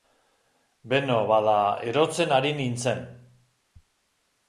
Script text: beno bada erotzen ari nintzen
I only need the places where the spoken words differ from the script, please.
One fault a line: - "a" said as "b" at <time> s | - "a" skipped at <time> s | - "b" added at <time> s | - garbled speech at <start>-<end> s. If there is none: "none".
none